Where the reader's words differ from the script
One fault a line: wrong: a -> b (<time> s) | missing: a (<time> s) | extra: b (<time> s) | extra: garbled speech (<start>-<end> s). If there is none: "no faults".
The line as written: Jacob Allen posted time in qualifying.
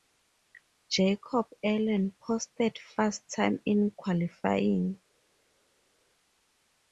extra: fast (2.8 s)